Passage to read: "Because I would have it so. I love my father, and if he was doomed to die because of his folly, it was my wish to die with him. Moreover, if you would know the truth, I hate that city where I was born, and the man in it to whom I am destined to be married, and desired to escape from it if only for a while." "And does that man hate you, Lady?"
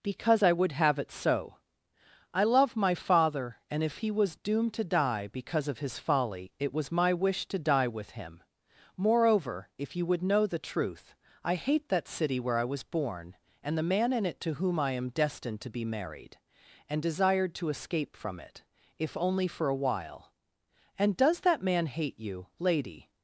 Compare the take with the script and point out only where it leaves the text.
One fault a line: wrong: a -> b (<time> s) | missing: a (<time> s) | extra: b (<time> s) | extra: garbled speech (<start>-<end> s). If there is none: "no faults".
no faults